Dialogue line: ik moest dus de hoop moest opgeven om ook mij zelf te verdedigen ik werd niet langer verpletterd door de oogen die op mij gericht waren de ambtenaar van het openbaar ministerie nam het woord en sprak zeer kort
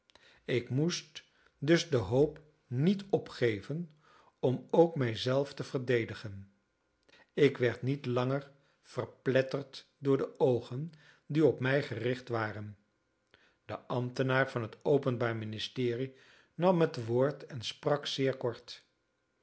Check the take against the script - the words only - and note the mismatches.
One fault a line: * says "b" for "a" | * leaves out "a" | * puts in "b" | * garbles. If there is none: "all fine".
* says "niet" for "moest"